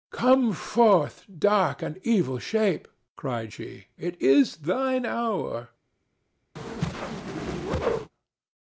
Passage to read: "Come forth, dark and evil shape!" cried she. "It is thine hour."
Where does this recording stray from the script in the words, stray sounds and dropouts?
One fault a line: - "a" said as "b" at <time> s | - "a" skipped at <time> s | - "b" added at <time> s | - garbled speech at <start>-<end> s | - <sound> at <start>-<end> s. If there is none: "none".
- whoosh at 6.6-8.1 s